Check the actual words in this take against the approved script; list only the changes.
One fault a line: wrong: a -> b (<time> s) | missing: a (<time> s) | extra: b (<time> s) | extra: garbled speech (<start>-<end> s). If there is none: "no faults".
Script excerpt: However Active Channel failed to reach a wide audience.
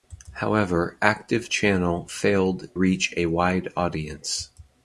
missing: to (2.7 s)